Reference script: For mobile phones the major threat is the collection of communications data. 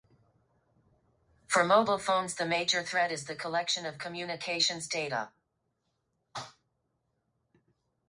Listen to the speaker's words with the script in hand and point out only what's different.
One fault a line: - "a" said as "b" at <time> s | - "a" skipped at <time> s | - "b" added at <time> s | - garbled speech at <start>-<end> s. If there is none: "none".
none